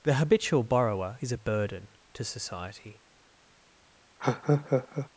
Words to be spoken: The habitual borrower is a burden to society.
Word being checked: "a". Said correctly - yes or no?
yes